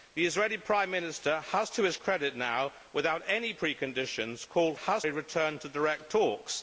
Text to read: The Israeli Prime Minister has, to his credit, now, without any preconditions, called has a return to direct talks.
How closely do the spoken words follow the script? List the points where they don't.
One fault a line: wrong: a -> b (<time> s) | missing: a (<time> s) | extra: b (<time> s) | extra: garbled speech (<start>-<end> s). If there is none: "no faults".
no faults